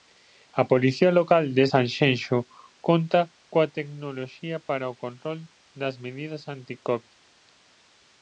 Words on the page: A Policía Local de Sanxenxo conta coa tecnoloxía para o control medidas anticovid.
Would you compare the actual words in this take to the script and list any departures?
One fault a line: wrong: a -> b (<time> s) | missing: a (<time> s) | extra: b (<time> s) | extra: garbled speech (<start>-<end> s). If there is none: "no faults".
extra: das (5.8 s)